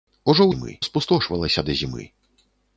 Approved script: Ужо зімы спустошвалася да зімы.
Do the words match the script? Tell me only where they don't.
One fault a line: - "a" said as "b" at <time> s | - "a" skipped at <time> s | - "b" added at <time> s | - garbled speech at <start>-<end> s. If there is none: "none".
none